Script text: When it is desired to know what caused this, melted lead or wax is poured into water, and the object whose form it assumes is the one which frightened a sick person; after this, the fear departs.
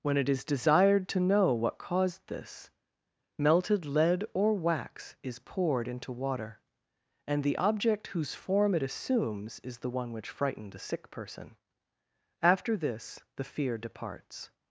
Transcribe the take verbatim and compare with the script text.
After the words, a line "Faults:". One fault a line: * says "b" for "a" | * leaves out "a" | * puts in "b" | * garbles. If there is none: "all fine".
When it is desired to know what caused this, melted lead or wax is poured into water, and the object whose form it assumes is the one which frightened a sick person; after this, the fear departs.
Faults:
all fine